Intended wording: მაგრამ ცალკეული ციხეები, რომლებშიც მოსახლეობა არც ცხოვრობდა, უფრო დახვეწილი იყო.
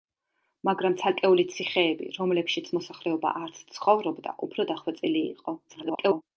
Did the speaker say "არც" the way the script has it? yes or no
yes